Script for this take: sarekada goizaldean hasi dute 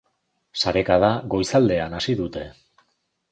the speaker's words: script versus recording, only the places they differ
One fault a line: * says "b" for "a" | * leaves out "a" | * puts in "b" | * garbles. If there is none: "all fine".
all fine